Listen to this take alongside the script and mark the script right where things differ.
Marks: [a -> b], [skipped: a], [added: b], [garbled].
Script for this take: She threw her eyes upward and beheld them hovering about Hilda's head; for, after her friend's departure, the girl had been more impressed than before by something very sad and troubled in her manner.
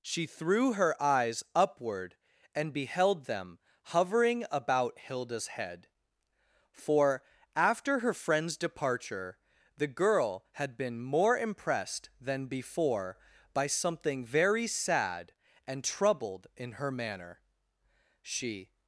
She threw her eyes upward and beheld them hovering about Hilda's head; for, after her friend's departure, the girl had been more impressed than before by something very sad and troubled in her manner. [added: She]